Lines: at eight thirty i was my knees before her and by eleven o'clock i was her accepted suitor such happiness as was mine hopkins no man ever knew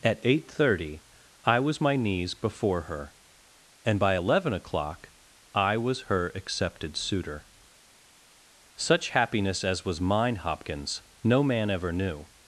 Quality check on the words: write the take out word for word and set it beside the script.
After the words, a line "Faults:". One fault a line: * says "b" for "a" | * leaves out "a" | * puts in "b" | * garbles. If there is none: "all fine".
at eight thirty i was my knees before her and by eleven o'clock i was her accepted suitor such happiness as was mine hopkins no man ever knew
Faults:
all fine